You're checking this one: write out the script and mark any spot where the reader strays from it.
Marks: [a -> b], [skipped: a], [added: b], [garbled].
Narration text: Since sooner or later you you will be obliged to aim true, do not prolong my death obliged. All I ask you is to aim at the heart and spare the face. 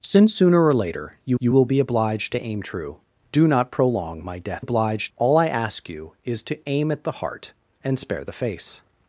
Since sooner or later you you will be obliged to aim true, do not prolong my death obliged. All I ask you is to aim at the heart and spare the face.